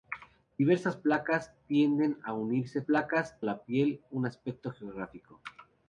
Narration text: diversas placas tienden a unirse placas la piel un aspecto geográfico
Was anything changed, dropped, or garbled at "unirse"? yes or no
no